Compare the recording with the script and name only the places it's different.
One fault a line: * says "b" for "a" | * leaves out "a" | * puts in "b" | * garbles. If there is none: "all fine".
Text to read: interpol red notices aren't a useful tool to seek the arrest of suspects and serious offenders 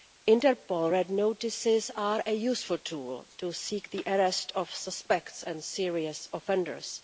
* says "are" for "aren't"